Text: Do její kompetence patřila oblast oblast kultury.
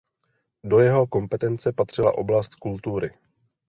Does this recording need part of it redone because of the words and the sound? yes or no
yes